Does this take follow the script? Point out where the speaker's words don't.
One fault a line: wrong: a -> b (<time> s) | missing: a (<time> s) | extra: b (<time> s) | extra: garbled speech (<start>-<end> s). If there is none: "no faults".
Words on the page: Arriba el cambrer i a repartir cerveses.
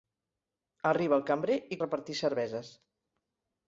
no faults